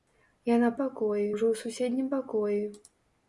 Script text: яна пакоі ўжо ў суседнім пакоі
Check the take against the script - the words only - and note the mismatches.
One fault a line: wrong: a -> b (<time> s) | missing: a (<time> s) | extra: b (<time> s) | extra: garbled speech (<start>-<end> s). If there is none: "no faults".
no faults